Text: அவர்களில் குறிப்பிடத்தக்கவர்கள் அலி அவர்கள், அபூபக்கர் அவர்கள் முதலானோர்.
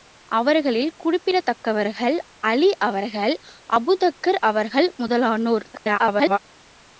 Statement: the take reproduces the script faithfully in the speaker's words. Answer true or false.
false